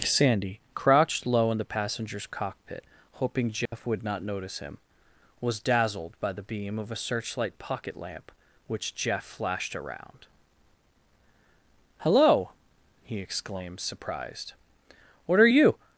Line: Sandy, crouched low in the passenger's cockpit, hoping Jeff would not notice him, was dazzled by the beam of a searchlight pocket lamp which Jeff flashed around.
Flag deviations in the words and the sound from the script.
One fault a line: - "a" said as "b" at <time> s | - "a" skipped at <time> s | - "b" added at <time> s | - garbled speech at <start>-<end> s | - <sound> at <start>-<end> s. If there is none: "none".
- dropout at 3.7-3.7 s
- "Hello he exclaimed surprised What are you" added at 12.0 s